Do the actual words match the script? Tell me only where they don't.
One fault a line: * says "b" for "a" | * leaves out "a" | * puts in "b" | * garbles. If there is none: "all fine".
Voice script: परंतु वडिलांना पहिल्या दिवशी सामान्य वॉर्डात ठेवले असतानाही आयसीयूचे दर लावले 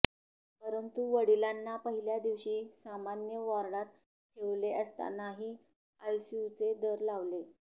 all fine